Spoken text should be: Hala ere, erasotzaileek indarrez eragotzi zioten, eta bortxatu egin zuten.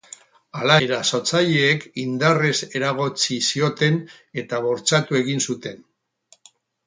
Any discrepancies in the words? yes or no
yes